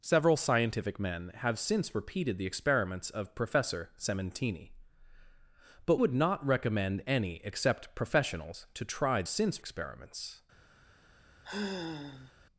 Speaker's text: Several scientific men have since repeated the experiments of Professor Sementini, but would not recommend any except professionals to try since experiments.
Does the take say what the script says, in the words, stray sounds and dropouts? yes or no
no